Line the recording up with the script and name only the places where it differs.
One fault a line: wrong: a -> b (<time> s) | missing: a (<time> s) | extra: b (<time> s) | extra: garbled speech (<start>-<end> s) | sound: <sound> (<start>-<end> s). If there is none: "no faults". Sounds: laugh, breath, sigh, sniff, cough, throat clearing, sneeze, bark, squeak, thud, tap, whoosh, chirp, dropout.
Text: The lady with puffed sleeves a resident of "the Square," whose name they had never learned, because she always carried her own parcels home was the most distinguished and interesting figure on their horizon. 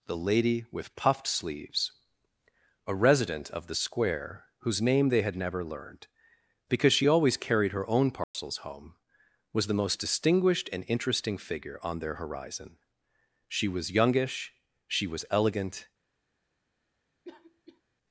sound: dropout (8.2-8.3 s)
extra: She was youngish she was elegant (13.5 s)
sound: cough (17.2-17.8 s)